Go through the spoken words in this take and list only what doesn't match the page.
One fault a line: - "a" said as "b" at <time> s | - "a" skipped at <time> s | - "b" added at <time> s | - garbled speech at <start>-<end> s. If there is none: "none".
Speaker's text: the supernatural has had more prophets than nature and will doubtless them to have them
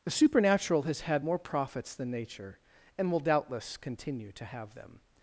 - "them" said as "continue" at 3.8 s